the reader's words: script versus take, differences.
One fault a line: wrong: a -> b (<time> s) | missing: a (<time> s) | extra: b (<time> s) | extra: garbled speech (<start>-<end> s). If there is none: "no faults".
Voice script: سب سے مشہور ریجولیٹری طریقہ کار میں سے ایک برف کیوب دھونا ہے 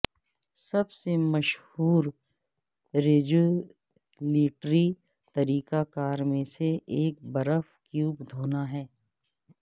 no faults